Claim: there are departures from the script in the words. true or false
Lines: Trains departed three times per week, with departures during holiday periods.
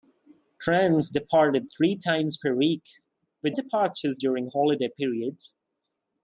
false